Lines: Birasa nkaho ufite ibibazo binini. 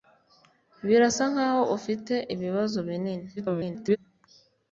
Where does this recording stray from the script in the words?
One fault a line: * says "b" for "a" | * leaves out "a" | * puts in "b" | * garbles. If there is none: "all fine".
* garbles